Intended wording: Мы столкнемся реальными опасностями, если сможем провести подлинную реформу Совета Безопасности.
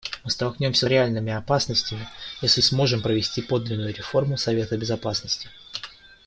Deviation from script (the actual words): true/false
false